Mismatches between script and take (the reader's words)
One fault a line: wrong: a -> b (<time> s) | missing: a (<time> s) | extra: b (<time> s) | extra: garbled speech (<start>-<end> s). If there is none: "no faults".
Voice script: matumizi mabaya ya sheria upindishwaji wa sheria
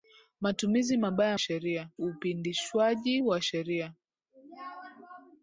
no faults